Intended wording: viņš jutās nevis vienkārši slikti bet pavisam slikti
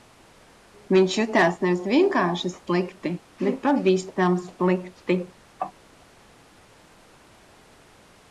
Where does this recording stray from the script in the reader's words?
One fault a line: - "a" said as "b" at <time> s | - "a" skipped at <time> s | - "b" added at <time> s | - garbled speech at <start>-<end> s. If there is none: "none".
none